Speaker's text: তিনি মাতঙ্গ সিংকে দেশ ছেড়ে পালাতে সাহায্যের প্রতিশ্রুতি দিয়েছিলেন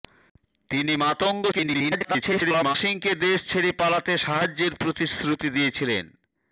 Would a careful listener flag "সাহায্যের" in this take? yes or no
no